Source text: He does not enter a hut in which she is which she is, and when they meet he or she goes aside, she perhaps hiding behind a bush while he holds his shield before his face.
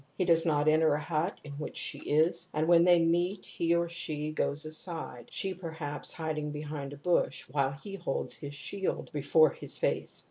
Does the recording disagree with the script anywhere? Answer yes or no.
yes